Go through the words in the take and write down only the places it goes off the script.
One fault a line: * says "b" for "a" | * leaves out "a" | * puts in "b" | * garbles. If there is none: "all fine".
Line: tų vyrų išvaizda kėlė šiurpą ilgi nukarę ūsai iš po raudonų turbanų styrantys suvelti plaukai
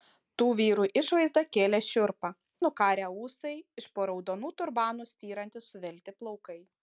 * leaves out "ilgi"